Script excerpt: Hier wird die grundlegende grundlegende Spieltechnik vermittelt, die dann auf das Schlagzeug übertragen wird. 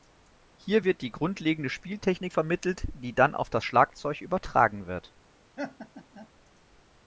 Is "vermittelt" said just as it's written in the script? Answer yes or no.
yes